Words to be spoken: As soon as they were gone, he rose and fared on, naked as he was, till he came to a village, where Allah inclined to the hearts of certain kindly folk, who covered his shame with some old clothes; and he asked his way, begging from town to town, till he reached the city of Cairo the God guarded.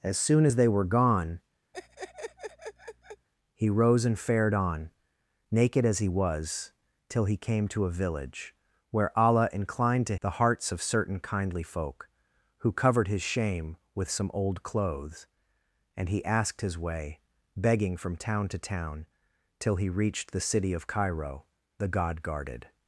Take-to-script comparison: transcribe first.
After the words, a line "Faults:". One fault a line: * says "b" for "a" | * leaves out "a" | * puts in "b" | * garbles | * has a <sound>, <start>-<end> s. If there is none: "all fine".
As soon as they were gone, he rose and fared on, naked as he was, till he came to a village, where Allah inclined to the hearts of certain kindly folk, who covered his shame with some old clothes; and he asked his way, begging from town to town, till he reached the city of Cairo the God guarded.
Faults:
* has a laugh, 1.7-3.3 s